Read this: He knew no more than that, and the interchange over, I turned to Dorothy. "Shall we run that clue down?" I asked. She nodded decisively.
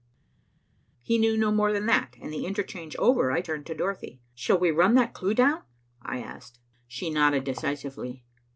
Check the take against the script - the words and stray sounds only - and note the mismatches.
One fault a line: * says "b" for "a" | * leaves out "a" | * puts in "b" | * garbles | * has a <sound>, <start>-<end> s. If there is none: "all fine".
all fine